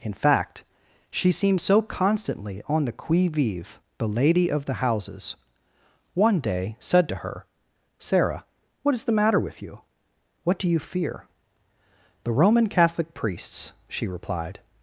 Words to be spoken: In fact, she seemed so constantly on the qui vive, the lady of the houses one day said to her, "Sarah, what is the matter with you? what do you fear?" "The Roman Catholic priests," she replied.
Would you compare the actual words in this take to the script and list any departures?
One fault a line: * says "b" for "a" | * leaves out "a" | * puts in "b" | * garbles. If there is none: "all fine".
all fine